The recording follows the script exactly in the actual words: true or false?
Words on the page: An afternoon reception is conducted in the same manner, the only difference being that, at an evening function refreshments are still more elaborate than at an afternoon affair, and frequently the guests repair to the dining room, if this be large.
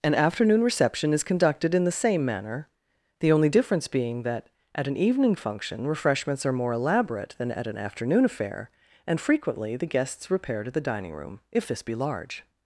false